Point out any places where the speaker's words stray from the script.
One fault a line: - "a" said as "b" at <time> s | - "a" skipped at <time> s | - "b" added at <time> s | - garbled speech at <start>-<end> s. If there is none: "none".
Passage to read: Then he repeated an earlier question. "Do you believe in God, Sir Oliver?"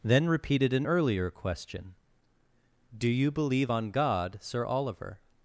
- "he" skipped at 0.3 s
- "in" said as "on" at 3.7 s